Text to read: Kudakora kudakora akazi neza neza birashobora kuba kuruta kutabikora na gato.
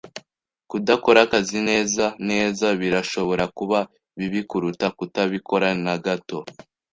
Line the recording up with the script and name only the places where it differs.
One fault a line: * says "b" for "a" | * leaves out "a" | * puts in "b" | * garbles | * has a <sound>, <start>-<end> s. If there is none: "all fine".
* leaves out "kudakora"
* puts in "bibi"